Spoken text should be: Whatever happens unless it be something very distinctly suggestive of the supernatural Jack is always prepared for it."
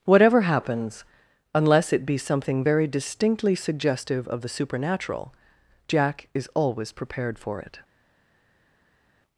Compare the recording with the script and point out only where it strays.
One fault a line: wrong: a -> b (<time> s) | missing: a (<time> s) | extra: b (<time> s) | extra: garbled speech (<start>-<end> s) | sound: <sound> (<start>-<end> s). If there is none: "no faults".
no faults